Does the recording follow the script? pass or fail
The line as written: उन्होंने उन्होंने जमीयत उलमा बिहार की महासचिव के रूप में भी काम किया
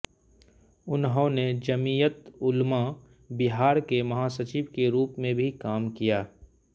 fail